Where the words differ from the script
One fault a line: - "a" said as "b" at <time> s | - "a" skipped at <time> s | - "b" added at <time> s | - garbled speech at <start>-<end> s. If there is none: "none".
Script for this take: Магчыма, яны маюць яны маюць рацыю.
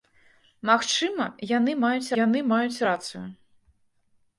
none